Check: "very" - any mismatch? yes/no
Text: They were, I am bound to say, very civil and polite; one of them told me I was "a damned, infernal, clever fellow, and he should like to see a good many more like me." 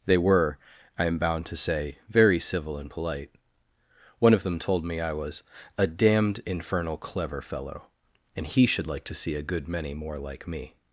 no